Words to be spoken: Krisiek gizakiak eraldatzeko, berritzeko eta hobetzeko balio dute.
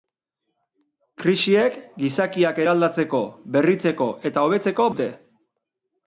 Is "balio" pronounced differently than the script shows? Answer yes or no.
yes